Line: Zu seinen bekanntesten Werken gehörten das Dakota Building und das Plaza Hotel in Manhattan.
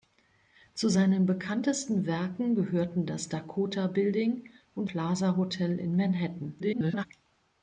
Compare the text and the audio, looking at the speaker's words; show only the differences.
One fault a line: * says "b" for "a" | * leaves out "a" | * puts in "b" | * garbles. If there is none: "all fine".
* leaves out "das"
* garbles